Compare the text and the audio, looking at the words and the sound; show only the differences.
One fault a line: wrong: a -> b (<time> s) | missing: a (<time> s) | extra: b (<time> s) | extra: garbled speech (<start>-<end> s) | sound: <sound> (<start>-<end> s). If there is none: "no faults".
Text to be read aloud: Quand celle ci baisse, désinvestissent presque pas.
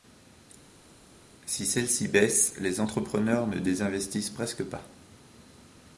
wrong: Quand -> Si (1.4 s)
extra: les entrepreneurs ne (2.6 s)